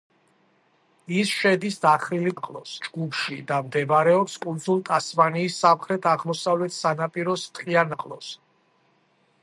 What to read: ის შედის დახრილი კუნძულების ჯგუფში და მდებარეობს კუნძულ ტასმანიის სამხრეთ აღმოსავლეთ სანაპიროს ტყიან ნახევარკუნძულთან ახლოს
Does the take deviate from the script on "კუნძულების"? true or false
true